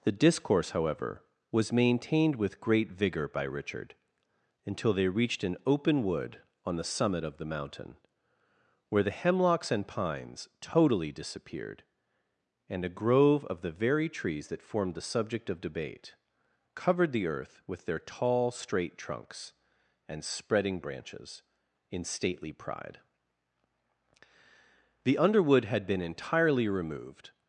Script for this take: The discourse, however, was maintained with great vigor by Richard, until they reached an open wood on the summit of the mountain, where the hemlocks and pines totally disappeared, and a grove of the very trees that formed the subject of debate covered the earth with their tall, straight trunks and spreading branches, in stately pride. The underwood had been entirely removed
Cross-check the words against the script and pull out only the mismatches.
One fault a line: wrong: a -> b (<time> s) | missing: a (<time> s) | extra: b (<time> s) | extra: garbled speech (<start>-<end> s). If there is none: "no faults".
no faults